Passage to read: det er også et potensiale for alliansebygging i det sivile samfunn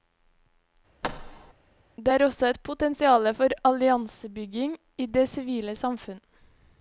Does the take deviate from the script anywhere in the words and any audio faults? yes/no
yes